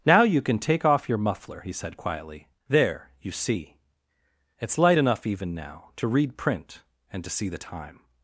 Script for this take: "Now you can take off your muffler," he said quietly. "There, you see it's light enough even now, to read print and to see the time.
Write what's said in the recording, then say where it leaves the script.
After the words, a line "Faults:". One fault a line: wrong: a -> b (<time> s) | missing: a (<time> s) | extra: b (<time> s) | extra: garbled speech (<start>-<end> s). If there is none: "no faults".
"Now you can take off your muffler," he said quietly. "There, you see it's light enough even now, to read print and to see the time.
Faults:
no faults